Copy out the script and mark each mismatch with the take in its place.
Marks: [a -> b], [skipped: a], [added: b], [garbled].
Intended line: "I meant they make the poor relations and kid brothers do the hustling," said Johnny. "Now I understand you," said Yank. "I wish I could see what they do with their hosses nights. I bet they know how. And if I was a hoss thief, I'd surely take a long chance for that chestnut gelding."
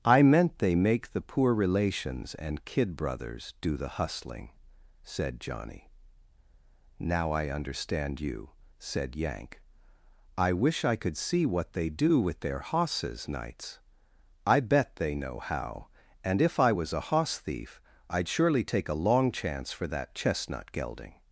"I meant they make the poor relations and kid brothers do the hustling," said Johnny. "Now I understand you," said Yank. "I wish I could see what they do with their hosses nights. I bet they know how. And if I was a hoss thief, I'd surely take a long chance for that chestnut gelding."